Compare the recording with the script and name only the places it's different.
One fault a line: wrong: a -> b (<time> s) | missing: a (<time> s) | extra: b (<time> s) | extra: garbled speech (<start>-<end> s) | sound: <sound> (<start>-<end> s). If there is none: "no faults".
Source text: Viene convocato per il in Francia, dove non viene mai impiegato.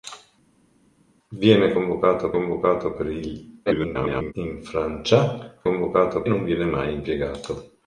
extra: convocato (2.3 s)
extra: garbled speech (3.7-4.3 s)
wrong: dove -> convocato (5.6 s)